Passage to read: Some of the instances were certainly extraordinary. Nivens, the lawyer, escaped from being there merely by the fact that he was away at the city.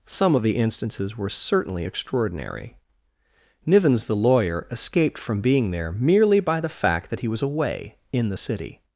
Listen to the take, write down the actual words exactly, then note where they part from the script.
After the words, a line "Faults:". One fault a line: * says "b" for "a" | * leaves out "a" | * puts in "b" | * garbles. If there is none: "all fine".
Some of the instances were certainly extraordinary. Nivens, the lawyer, escaped from being there merely by the fact that he was away in the city.
Faults:
* says "in" for "at"